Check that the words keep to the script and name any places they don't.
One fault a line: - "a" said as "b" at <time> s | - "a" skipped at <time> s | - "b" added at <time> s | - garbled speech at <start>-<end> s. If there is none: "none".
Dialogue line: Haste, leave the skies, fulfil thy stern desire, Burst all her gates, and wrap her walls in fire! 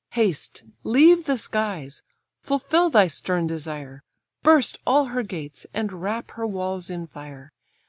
none